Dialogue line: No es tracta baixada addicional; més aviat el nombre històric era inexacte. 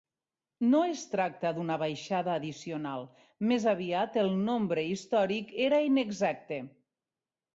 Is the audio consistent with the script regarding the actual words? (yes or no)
no